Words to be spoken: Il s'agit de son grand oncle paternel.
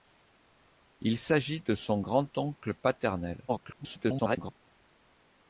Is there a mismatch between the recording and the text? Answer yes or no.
yes